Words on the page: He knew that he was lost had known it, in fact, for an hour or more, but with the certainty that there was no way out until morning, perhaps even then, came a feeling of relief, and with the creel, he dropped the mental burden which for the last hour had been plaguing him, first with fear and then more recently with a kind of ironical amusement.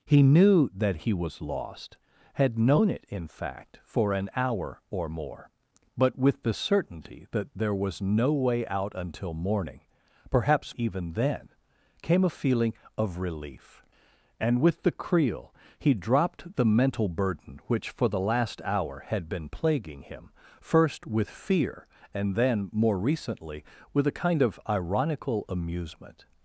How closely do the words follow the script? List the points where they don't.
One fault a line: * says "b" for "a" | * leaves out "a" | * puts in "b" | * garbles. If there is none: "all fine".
all fine